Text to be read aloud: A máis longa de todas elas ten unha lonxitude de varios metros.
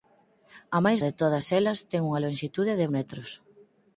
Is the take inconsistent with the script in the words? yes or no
yes